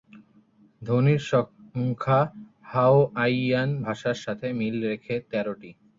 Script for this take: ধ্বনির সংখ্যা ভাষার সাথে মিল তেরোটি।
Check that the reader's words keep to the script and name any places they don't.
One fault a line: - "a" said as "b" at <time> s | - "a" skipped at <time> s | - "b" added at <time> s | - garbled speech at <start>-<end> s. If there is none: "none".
- "হাওয়াইয়ান" added at 2.7 s
- "রেখে" added at 4.8 s